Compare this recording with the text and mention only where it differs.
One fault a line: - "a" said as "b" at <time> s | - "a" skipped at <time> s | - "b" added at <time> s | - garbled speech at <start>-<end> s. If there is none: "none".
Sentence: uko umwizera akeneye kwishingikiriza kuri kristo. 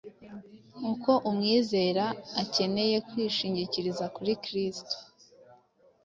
none